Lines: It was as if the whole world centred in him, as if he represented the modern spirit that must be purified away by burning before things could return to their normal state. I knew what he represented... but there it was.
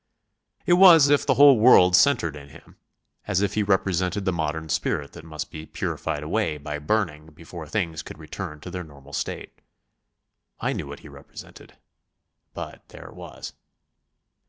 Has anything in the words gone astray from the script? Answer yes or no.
yes